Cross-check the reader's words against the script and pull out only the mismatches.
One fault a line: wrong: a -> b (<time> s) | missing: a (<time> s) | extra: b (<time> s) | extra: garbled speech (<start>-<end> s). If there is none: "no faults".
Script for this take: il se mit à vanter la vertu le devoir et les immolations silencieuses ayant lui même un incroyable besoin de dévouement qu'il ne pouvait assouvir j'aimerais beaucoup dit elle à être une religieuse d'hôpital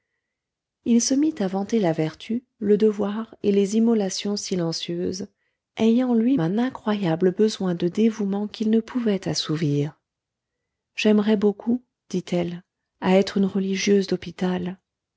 missing: même (6.4 s)